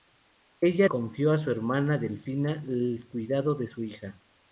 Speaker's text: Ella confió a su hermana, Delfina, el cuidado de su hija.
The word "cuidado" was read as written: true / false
true